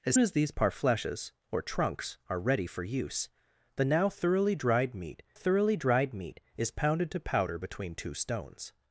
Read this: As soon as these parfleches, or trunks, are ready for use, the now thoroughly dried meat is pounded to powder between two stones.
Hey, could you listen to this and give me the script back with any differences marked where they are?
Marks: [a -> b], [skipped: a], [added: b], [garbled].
As [skipped: soon] as these parfleches, or trunks, are ready for use, the now thoroughly dried meat [added: thoroughly dried meat] is pounded to powder between two stones.